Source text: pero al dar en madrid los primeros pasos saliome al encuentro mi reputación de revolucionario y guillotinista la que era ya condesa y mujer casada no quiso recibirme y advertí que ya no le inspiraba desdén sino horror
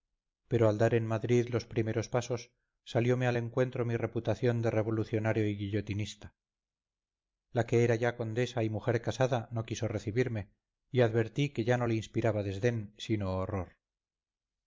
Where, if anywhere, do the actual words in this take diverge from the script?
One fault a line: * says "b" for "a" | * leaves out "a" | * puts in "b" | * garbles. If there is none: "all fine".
all fine